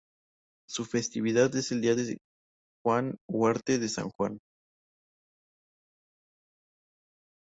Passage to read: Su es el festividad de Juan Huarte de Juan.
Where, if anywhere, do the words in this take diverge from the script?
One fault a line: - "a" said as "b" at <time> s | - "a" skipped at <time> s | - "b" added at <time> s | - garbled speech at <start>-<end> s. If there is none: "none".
- "festividad" added at 0.8 s
- "festividad" said as "día" at 1.8 s
- "San" added at 3.9 s